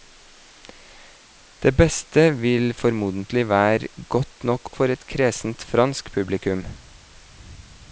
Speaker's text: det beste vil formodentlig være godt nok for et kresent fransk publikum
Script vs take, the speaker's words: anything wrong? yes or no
no